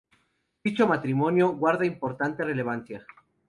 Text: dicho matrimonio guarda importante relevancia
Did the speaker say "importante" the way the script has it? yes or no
yes